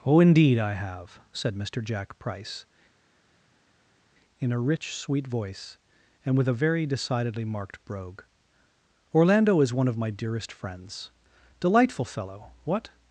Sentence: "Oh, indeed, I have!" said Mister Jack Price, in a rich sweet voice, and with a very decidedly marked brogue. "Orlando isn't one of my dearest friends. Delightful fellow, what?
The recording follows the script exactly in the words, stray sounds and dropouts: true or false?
false